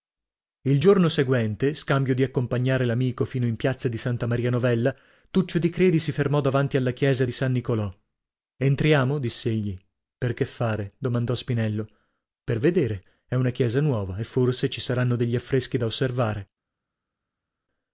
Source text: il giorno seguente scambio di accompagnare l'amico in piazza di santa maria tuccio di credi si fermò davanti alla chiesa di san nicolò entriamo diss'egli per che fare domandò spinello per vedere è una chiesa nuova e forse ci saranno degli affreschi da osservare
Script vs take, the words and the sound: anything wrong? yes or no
yes